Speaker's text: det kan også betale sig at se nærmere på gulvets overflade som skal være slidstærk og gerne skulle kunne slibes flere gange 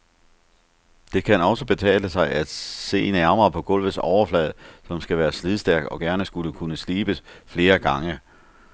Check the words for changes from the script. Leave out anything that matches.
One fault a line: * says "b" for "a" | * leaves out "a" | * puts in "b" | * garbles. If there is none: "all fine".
all fine